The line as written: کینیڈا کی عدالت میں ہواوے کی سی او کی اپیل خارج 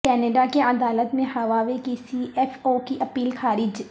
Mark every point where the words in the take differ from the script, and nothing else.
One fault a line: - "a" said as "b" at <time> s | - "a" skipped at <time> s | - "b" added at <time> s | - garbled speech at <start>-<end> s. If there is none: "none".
- "ایف" added at 2.4 s